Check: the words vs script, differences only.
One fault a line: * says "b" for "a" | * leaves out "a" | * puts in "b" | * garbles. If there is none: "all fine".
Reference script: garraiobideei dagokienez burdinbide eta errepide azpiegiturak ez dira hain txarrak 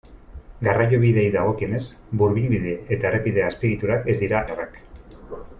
* leaves out "hain"